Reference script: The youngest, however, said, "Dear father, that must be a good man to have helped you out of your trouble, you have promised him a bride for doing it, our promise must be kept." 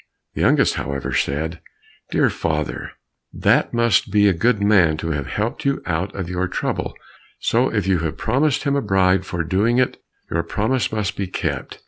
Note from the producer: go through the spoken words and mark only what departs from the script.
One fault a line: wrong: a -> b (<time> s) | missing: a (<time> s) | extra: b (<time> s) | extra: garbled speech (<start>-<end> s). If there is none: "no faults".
extra: so if (7.4 s)
wrong: our -> your (10.3 s)